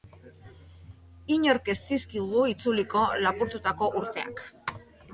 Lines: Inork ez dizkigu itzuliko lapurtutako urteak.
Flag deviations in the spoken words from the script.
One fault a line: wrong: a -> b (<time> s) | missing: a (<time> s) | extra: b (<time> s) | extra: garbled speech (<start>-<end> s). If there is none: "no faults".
no faults